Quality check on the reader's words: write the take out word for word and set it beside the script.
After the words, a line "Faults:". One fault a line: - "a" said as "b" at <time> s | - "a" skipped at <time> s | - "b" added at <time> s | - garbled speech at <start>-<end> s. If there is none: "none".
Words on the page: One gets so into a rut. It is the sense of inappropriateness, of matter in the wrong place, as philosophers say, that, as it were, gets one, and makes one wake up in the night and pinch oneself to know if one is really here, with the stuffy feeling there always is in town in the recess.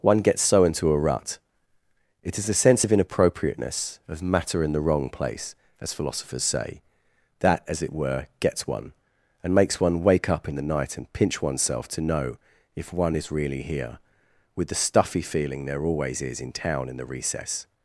One gets so into a rut. It is a sense of inappropriateness, of matter in the wrong place, as philosophers say, that, as it were, gets one, and makes one wake up in the night and pinch oneself to know if one is really here, with the stuffy feeling there always is in town in the recess.
Faults:
- "the" said as "a" at 2.5 s